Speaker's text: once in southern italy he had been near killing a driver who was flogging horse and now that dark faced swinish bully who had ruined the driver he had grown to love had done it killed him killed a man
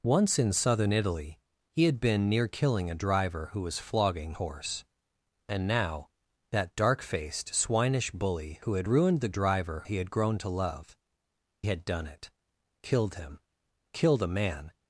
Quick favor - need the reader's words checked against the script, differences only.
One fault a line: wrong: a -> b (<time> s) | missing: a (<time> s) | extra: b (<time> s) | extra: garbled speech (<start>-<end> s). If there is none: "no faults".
no faults